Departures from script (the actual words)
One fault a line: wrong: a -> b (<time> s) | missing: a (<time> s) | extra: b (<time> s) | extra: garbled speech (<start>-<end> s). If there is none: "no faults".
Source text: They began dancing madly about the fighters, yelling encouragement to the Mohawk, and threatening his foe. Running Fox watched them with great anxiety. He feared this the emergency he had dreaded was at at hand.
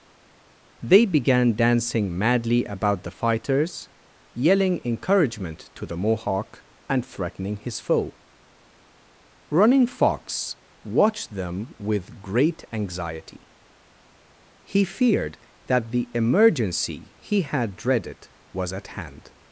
wrong: this -> that (15.7 s)
missing: at (18.9 s)